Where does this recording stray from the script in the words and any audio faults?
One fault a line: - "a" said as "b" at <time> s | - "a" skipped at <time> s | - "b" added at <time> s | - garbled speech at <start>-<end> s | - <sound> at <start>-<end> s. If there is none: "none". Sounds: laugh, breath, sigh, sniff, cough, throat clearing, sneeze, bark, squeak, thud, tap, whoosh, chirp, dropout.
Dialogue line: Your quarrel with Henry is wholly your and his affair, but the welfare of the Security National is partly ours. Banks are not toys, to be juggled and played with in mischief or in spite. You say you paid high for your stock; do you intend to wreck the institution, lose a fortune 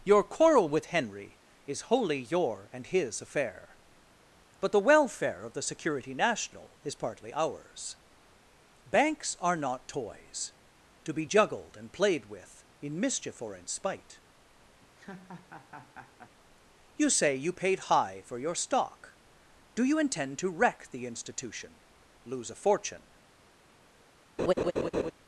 - laugh at 14.8-16.3 s
- laugh at 24.4-25.1 s